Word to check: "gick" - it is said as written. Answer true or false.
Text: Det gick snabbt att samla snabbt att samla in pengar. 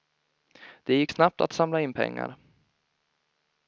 true